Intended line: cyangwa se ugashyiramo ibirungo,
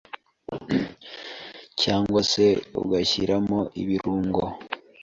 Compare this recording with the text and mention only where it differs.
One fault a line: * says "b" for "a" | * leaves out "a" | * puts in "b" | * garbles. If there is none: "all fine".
all fine